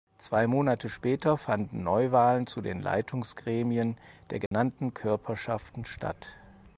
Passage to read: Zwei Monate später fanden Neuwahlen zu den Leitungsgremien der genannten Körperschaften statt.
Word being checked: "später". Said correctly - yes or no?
yes